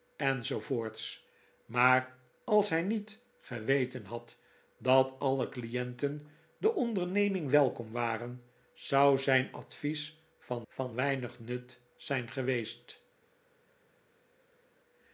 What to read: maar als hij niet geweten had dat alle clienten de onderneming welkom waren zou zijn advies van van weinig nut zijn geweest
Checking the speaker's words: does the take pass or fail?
pass